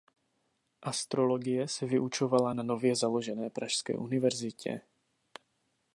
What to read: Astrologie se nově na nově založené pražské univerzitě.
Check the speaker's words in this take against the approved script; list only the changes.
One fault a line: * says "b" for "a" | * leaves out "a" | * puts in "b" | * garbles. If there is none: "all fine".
* says "vyučovala" for "nově"